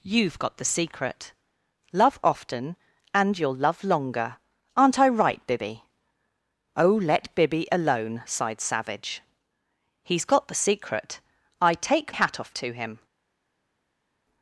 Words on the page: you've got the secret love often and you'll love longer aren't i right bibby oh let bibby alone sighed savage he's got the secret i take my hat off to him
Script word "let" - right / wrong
right